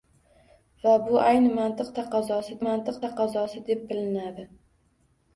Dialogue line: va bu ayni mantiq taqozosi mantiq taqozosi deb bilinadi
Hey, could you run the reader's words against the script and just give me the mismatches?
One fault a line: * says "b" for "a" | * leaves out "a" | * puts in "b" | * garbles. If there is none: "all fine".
all fine